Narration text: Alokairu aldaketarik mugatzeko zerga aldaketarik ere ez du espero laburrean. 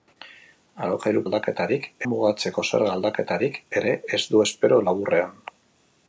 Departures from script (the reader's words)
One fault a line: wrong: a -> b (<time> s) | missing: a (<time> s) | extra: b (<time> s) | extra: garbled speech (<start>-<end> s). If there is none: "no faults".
no faults